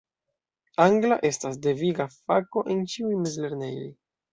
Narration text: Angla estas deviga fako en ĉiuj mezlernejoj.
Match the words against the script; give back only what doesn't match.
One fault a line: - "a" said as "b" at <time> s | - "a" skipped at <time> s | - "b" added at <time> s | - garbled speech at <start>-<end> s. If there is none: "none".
none